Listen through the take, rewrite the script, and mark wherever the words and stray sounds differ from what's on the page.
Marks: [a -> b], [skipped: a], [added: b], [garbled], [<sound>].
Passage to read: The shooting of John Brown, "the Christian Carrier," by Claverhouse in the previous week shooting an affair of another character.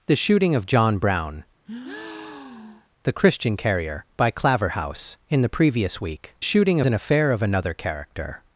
The shooting of John Brown, [breath] "the Christian Carrier," by Claverhouse in the previous week shooting an affair of another character.